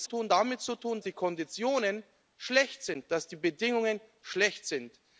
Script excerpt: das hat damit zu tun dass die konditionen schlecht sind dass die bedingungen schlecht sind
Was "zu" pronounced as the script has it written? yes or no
yes